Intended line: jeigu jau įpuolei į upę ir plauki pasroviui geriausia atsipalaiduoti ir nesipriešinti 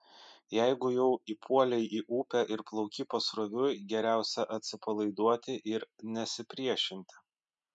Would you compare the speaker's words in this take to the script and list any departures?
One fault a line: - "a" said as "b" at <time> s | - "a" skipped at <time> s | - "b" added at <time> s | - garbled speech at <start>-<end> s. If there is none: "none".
none